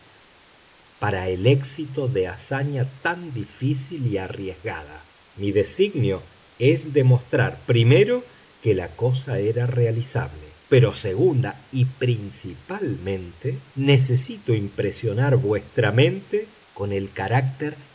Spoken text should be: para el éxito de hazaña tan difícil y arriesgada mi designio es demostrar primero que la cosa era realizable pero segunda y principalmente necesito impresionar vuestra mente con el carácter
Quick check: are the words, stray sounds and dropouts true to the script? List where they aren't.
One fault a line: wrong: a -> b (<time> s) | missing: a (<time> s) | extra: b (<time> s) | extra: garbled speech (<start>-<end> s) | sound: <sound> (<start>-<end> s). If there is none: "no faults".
no faults